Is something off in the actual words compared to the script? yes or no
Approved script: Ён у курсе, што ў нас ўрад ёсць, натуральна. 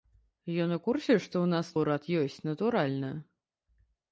no